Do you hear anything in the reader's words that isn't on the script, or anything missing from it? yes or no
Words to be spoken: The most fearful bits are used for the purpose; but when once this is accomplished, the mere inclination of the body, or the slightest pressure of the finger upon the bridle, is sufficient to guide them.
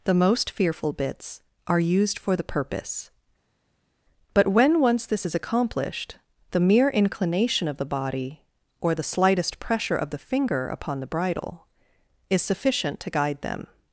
no